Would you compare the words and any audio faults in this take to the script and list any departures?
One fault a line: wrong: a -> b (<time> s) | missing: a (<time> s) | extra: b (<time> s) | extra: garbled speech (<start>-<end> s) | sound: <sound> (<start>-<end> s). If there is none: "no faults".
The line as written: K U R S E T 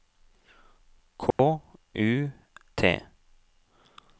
sound: dropout (1.3-1.4 s)
missing: R S E (2.3 s)